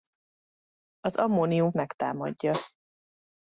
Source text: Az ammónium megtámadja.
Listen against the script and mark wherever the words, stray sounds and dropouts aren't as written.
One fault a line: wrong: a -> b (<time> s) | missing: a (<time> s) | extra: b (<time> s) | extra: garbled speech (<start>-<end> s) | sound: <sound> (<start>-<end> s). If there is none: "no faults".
no faults